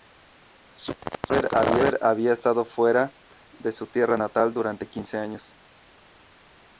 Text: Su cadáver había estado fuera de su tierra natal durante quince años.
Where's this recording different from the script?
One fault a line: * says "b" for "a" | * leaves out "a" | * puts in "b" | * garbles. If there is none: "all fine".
all fine